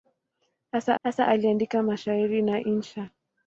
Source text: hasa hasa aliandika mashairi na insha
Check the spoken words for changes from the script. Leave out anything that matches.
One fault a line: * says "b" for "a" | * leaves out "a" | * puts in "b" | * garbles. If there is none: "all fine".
all fine